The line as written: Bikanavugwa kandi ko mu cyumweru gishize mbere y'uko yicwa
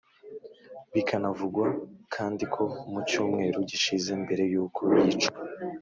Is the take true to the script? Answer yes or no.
yes